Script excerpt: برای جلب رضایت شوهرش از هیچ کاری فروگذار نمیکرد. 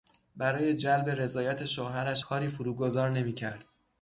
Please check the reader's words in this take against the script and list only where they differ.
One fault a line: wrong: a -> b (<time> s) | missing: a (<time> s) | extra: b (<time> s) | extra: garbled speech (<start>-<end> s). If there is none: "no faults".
missing: از هیچ (2.2 s)